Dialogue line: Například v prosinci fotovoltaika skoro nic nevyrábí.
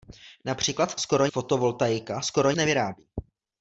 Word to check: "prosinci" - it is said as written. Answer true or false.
false